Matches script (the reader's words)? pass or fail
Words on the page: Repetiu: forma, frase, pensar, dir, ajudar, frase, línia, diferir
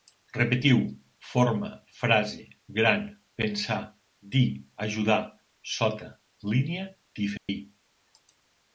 fail